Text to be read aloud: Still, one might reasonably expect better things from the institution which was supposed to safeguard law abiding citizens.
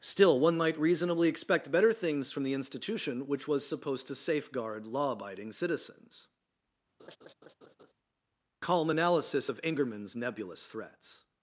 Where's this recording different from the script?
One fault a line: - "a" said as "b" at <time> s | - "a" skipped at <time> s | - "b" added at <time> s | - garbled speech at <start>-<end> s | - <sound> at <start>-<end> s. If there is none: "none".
- laugh at 7.0-7.9 s
- "Calm analysis of Ingerman's nebulous threats" added at 8.6 s